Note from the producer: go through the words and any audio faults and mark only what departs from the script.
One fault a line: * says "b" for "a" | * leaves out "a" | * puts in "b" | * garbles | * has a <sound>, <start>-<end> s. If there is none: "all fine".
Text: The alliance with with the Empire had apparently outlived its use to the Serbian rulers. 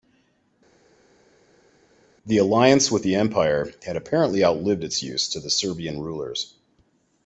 * leaves out "with"